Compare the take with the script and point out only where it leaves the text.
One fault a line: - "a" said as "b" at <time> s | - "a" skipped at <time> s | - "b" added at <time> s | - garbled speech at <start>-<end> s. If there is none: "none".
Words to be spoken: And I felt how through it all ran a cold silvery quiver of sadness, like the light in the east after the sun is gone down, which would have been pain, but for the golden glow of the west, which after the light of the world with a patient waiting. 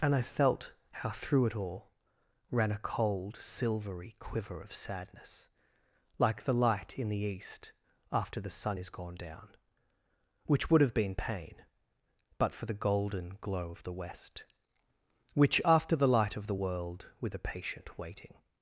none